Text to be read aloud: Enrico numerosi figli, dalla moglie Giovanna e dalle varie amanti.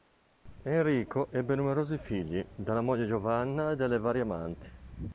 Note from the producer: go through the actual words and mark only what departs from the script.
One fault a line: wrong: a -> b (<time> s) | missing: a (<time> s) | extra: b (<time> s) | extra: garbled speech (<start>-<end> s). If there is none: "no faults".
extra: ebbe (1.3 s)